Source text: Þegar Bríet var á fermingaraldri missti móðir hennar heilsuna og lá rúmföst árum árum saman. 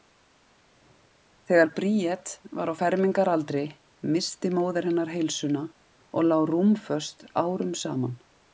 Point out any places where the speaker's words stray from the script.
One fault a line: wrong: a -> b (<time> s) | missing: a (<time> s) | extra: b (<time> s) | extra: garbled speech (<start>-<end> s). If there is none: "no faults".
missing: árum (7.7 s)